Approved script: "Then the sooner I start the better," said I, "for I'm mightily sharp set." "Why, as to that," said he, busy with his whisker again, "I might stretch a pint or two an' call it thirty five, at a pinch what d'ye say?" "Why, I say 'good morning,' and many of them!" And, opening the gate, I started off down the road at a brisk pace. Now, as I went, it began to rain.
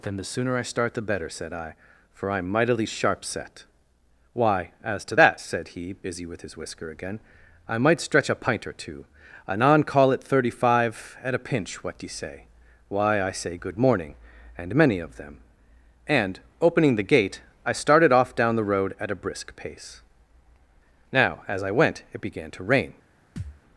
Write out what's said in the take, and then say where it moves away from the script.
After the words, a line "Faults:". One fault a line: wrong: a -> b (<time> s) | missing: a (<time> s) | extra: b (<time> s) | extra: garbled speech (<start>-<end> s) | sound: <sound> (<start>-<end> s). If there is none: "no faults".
"Then the sooner I start the better," said I, "for I'm mightily sharp set." "Why, as to that," said he, busy with his whisker again, "I might stretch a pint or two anon' call it thirty five, at a pinch what d'ye say?" "Why, I say 'good morning,' and many of them!" And, opening the gate, I started off down the road at a brisk pace. Now, as I went, it began to rain.
Faults:
wrong: an -> anon (9.5 s)
sound: thud (23.4-23.6 s)